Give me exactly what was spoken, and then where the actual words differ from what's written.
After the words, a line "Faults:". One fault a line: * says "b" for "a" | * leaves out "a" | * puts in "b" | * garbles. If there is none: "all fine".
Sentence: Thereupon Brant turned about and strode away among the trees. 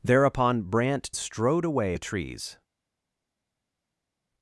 Thereupon Brant strode away the trees.
Faults:
* leaves out "turned about and"
* leaves out "among"